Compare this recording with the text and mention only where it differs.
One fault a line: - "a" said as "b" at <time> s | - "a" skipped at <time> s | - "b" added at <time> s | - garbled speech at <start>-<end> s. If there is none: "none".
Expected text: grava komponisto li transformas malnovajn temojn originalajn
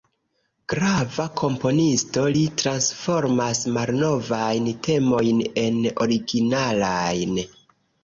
- "en" added at 5.7 s